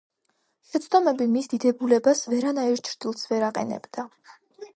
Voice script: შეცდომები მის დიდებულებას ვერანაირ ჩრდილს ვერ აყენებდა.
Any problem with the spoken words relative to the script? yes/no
no